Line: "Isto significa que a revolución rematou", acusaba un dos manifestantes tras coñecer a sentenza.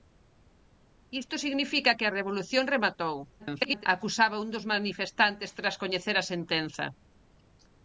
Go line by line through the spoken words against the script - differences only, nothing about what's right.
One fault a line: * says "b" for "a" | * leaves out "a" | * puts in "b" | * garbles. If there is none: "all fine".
* garbles